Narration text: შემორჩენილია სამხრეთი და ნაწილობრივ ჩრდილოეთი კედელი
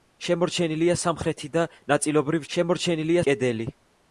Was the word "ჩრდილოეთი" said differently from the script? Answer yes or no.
yes